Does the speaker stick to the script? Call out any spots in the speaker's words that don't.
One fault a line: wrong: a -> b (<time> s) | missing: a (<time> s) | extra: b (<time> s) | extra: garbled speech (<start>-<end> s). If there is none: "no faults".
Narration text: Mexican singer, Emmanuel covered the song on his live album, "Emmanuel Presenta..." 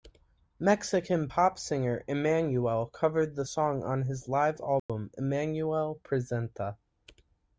extra: pop (1.3 s)